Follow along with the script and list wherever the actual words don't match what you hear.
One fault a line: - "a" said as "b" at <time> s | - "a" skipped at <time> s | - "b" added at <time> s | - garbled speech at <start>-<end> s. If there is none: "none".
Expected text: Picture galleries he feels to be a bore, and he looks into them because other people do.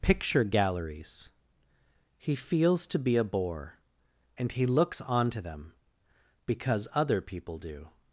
- "into" said as "onto" at 5.0 s